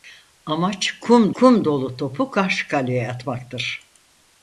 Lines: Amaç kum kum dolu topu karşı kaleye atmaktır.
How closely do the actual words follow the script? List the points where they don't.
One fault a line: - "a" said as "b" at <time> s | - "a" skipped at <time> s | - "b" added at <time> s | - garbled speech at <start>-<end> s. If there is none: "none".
none